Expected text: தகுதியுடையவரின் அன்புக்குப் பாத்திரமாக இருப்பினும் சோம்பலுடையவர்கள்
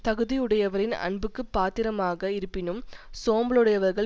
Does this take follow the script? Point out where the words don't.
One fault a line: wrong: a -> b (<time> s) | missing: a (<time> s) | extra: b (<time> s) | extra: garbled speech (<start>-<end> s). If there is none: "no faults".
no faults